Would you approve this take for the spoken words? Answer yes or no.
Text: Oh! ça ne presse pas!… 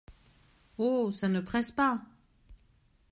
yes